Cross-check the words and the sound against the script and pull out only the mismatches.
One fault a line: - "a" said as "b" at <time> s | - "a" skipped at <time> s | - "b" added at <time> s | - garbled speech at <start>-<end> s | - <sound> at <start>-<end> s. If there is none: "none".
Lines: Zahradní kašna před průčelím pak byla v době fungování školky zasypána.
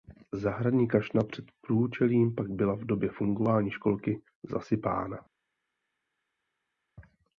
none